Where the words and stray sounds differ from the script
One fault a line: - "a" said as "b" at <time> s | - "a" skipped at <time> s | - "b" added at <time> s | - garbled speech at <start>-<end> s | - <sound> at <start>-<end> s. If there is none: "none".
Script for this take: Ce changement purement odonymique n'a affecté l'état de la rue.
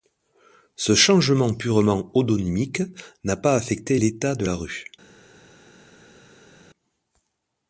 - "pas" added at 3.4 s